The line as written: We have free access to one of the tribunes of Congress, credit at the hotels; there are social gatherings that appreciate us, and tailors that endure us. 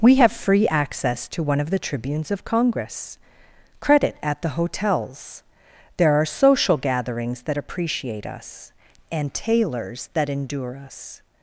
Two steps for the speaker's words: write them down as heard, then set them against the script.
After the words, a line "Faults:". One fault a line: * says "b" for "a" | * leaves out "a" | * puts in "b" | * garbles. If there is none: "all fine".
We have free access to one of the tribunes of Congress, credit at the hotels; there are social gatherings that appreciate us, and tailors that endure us.
Faults:
all fine